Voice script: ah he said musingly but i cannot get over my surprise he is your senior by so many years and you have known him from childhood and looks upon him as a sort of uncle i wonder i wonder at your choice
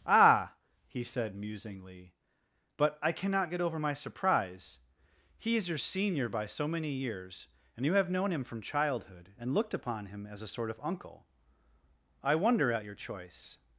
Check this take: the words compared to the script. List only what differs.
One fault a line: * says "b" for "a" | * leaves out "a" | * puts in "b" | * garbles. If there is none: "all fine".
* says "looked" for "looks"
* leaves out "i wonder"